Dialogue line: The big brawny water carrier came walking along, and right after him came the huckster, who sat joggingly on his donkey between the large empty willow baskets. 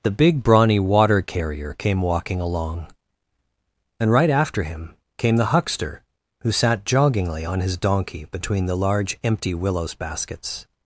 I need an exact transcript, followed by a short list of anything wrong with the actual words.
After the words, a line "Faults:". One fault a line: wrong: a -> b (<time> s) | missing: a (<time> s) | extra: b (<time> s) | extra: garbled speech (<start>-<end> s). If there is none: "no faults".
The big brawny water carrier came walking along, and right after him came the huckster, who sat joggingly on his donkey between the large empty willows baskets.
Faults:
wrong: willow -> willows (9.5 s)